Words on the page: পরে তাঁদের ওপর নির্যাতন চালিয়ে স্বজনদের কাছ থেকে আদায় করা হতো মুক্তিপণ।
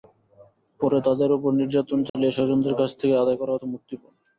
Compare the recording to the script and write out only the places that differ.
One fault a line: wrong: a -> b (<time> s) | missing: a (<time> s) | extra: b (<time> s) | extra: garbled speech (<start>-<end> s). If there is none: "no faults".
no faults